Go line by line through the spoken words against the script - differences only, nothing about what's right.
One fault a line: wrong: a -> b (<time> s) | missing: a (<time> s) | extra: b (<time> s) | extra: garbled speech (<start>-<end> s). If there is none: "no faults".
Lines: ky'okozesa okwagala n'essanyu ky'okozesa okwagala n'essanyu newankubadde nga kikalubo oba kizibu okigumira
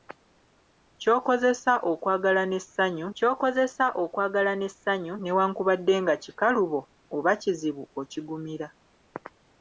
no faults